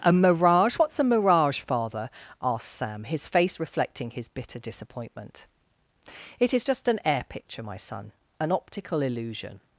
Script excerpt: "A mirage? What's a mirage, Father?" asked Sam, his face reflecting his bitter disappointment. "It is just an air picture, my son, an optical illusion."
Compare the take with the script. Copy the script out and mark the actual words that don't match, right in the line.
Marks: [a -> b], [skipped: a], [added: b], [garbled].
"A mirage? What's a mirage, Father?" asked Sam, his face reflecting his bitter disappointment. "It is just an air picture, my son, an optical illusion."